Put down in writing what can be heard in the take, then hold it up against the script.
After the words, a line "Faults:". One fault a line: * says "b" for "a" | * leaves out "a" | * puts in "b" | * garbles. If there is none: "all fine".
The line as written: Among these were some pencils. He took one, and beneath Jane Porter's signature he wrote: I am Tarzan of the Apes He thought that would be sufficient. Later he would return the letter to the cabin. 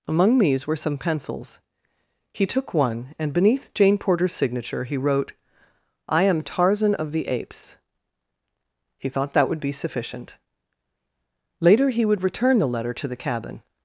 Among these were some pencils. He took one, and beneath Jane Porter's signature he wrote: I am Tarzan of the Apes He thought that would be sufficient. Later he would return the letter to the cabin.
Faults:
all fine